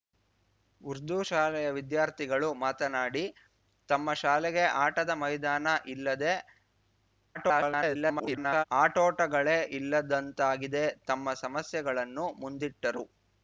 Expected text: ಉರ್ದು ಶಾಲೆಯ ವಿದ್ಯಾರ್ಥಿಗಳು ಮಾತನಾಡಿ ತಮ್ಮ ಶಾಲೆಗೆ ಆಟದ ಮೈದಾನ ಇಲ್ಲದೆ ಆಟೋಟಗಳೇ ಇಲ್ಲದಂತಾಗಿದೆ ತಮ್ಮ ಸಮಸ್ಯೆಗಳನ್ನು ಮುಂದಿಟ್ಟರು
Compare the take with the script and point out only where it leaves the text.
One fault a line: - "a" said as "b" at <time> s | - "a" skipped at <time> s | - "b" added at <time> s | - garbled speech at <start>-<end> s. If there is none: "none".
- garbled speech at 7.3-8.6 s